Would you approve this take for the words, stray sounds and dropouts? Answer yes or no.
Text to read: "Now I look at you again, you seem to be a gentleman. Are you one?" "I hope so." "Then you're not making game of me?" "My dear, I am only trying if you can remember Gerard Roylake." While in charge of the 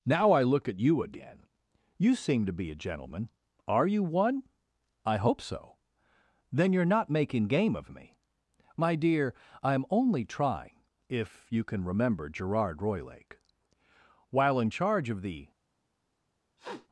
no